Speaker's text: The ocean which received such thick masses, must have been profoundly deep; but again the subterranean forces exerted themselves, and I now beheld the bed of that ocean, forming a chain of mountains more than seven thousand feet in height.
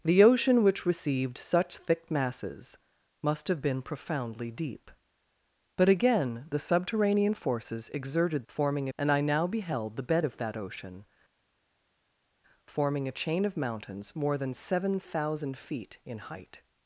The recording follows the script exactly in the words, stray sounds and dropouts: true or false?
false